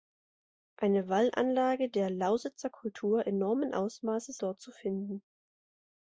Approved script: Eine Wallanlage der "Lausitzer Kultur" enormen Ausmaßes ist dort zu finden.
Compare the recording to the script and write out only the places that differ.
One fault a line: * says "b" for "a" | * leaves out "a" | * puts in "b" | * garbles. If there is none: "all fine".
* leaves out "ist"